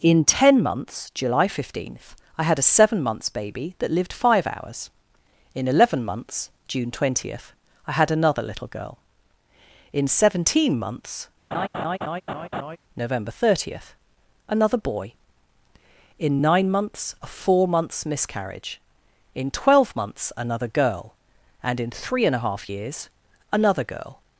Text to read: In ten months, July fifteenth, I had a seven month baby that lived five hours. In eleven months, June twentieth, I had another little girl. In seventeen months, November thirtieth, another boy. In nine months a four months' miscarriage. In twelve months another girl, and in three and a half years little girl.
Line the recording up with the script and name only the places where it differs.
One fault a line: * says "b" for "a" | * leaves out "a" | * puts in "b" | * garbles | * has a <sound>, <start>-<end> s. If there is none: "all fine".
* says "months" for "month"
* has a laugh, 11.5-12.8 s
* says "another" for "little"